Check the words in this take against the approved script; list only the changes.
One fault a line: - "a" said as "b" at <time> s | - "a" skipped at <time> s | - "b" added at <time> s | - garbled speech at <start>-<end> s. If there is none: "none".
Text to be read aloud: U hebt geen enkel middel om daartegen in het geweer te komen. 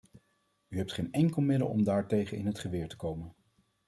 none